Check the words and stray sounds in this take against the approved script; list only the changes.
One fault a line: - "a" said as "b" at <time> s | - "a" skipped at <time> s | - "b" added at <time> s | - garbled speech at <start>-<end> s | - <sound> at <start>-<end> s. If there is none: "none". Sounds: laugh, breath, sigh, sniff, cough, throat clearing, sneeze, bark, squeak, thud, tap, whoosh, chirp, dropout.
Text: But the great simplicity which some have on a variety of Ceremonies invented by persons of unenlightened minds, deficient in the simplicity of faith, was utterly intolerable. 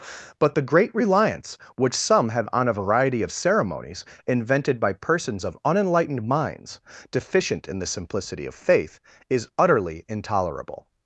- "simplicity" said as "reliance" at 0.9 s
- "was" said as "is" at 9.3 s